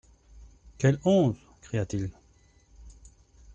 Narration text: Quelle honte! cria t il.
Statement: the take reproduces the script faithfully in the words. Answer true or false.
true